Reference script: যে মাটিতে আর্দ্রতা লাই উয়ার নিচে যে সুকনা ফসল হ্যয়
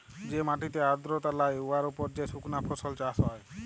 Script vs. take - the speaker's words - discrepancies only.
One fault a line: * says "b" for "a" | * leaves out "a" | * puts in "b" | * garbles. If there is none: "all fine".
* says "উপর" for "নিচে"
* puts in "চাষ"